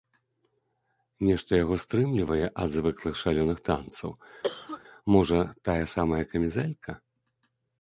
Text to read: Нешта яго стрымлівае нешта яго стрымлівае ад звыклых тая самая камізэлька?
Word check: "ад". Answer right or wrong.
wrong